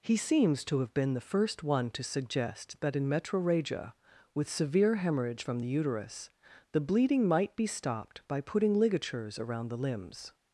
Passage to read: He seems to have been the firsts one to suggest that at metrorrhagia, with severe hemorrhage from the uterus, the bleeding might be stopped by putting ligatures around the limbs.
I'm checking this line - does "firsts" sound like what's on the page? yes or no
no